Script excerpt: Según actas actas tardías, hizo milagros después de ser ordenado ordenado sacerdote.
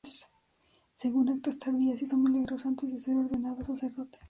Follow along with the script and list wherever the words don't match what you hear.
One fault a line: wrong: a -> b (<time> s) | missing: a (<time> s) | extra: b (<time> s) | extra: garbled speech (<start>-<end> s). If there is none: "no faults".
missing: actas (1.6 s)
wrong: después -> antes (2.6 s)
missing: ordenado (3.6 s)